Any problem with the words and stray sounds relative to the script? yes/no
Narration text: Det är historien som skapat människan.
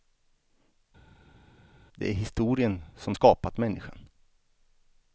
no